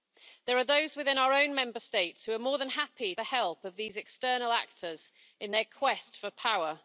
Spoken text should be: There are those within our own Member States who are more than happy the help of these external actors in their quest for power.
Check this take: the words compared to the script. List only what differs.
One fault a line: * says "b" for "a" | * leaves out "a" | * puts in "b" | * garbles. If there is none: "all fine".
all fine